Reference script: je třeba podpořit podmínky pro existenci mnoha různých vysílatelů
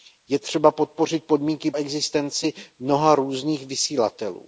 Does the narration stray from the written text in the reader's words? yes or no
yes